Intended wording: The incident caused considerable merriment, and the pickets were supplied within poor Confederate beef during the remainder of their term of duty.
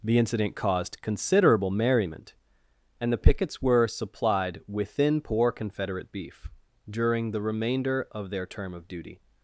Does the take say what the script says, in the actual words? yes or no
yes